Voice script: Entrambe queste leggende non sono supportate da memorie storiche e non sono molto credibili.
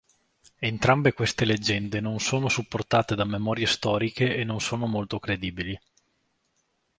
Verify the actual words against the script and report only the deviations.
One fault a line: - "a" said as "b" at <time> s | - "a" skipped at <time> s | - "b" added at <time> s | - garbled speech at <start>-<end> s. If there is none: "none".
none